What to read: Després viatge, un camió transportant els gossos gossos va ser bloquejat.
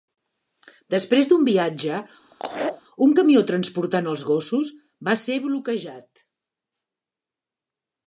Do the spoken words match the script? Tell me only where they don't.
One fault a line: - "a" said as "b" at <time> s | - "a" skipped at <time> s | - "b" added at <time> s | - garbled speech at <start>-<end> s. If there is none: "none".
- "d'un" added at 1.3 s
- "gossos" skipped at 4.7 s